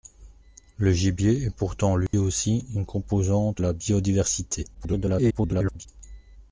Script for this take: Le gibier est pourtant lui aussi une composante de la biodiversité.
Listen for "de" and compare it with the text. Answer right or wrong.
wrong